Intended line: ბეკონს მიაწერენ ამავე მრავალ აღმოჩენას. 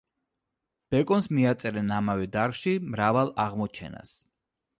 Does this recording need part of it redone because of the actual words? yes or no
yes